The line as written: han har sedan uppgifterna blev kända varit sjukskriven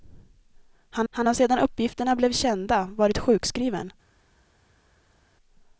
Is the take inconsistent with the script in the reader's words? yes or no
yes